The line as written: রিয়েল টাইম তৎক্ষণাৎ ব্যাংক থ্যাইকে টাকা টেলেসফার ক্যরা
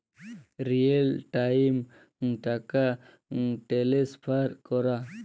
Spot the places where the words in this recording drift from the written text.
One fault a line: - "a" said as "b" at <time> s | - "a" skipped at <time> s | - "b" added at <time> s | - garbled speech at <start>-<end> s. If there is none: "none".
- "তৎক্ষণাৎ ব্যাংক থ্যাইকে" skipped at 1.7 s